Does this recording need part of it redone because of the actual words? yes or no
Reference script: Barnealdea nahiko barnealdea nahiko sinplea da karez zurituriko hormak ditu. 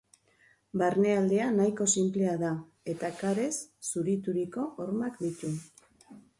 yes